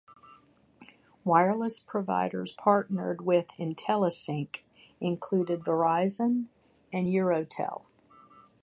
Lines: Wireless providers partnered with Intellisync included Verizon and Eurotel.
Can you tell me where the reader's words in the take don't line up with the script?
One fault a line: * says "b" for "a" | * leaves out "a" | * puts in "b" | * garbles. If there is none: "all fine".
all fine